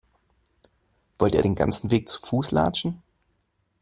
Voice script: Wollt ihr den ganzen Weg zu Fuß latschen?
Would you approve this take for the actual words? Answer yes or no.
yes